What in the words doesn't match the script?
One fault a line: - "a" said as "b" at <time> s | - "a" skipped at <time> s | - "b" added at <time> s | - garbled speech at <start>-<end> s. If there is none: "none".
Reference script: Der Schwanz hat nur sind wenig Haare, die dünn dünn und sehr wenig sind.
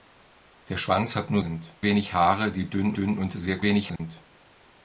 none